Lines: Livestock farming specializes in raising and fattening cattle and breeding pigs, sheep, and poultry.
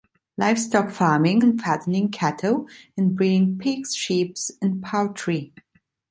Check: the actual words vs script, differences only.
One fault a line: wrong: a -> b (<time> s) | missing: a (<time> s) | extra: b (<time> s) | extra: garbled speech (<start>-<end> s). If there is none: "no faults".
missing: specializes in raising (1.4 s)